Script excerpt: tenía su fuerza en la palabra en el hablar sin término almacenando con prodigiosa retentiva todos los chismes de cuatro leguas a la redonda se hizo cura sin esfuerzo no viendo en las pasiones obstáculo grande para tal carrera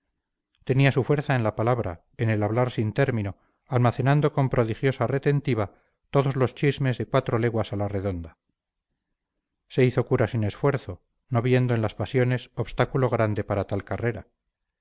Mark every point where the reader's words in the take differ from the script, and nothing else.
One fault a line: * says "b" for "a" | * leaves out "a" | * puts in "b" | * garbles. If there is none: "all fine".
all fine